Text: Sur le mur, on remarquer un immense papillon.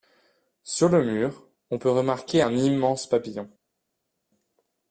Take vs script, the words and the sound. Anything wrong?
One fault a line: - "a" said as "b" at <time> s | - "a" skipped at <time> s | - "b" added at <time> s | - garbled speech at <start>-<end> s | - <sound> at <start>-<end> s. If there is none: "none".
- "peut" added at 1.7 s